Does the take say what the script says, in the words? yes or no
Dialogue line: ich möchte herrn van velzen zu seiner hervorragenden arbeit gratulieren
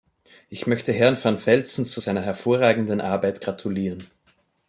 yes